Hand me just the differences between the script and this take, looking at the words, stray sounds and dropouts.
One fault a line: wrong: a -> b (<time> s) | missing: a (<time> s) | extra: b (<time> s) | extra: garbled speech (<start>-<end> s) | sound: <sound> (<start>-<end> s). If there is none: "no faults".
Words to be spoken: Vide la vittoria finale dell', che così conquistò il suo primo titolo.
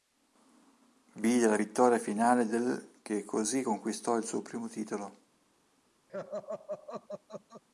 sound: laugh (6.1-7.6 s)